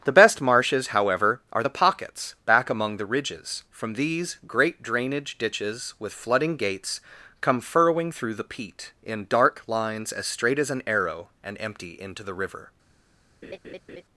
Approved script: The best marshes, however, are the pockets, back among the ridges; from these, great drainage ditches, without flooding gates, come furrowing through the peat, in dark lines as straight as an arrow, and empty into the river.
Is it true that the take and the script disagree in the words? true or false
true